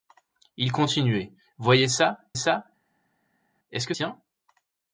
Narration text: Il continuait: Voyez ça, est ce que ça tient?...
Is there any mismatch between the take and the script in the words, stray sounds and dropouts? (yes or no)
yes